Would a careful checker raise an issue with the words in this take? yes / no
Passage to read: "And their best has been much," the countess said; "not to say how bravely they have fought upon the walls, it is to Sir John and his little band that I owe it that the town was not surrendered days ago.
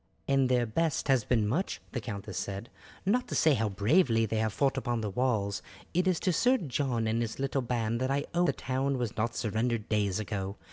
yes